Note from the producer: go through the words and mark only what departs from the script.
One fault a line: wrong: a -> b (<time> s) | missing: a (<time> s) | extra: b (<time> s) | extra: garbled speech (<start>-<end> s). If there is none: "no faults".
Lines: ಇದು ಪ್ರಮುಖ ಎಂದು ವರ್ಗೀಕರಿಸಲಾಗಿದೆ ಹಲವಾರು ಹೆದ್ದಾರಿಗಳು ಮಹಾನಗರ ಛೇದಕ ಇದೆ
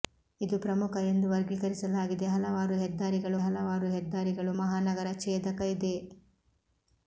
extra: ಹಲವಾರು ಹೆದ್ದಾರಿಗಳು (3.4 s)